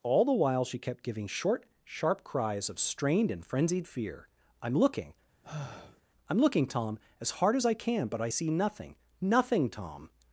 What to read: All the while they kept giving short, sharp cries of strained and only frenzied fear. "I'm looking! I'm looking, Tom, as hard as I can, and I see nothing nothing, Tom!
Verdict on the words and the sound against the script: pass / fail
fail